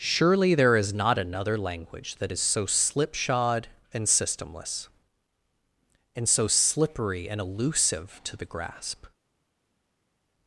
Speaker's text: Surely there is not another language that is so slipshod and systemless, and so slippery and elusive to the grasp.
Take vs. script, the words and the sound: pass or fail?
pass